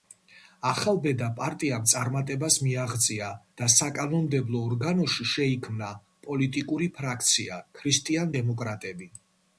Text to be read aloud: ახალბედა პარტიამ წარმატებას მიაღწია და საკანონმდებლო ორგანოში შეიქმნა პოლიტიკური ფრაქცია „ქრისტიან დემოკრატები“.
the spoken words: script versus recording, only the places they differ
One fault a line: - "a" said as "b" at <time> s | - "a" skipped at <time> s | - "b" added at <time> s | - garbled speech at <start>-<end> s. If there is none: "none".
none